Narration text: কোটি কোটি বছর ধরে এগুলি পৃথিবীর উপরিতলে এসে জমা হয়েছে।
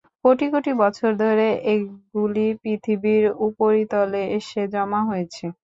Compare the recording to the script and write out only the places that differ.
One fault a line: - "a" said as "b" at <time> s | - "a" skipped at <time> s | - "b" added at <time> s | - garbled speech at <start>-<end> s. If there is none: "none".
none